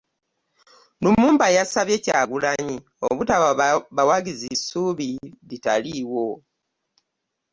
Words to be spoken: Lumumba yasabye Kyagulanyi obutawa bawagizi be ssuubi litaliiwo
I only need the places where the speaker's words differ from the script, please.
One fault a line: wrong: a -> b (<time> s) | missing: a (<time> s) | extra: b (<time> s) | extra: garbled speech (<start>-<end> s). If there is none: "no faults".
missing: be (4.5 s)